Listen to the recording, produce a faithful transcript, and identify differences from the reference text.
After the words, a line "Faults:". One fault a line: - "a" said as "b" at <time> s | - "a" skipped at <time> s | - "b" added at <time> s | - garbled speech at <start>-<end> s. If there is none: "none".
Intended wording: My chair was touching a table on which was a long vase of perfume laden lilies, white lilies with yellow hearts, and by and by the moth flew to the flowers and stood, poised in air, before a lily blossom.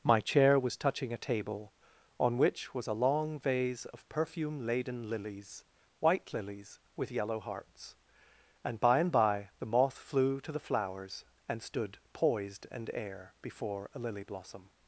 My chair was touching a table on which was a long vase of perfume laden lilies, white lilies with yellow hearts, and by and by the moth flew to the flowers and stood, poised and air, before a lily blossom.
Faults:
- "in" said as "and" at 12.7 s